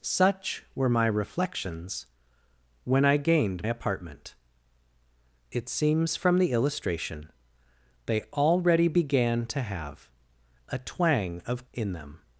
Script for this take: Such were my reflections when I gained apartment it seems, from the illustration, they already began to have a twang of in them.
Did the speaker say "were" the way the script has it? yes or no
yes